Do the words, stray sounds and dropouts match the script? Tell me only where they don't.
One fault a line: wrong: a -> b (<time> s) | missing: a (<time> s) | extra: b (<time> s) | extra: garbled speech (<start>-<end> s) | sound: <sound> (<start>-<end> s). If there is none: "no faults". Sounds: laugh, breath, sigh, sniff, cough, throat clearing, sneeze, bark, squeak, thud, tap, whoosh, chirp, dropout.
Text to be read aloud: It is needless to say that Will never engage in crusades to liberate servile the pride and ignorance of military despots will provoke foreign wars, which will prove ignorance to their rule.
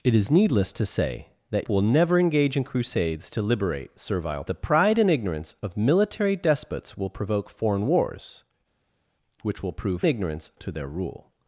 no faults